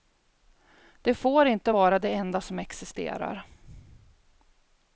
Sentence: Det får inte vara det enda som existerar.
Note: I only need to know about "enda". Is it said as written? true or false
true